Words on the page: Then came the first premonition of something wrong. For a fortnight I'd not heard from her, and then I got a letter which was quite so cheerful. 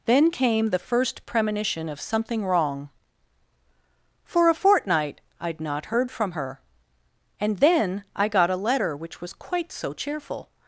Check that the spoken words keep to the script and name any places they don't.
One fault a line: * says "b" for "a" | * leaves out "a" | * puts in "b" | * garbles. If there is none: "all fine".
all fine